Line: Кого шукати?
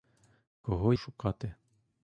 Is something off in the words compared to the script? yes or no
no